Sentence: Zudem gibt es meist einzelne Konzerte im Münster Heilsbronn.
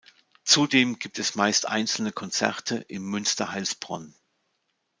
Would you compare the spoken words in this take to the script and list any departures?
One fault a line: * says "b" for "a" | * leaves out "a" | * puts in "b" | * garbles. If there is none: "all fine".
all fine